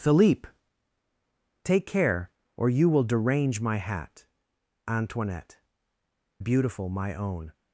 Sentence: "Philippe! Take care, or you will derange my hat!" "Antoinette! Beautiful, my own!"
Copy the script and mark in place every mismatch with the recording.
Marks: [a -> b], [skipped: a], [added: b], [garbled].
"Philippe! Take care, or you will derange my hat!" "Antoinette! Beautiful, my own!"